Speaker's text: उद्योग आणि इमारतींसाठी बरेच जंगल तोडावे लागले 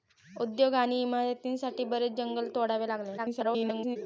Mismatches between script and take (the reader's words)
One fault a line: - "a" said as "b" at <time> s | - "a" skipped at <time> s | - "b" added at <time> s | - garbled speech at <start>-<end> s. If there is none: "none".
- garbled speech at 3.2-4.0 s